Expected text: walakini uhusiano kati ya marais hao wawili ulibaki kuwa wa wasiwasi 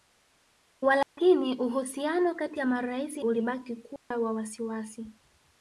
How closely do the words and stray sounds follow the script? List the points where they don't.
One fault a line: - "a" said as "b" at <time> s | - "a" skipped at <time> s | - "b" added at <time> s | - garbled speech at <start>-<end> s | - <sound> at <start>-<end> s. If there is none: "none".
- dropout at 1.0-1.2 s
- "hao wawili" skipped at 3.2 s
- dropout at 4.0-4.1 s